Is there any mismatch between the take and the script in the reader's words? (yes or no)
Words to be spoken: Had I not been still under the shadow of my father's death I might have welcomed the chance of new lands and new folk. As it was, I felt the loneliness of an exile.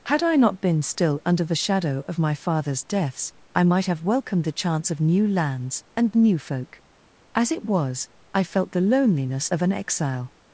yes